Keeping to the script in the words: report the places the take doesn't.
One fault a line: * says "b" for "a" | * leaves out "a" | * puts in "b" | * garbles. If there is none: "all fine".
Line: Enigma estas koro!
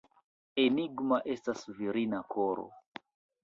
* puts in "virina"